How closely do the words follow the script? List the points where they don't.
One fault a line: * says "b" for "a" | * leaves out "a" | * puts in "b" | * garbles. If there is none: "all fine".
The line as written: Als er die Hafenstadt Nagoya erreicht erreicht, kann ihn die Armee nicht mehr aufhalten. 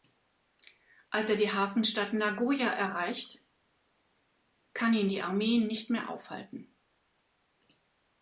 * leaves out "erreicht"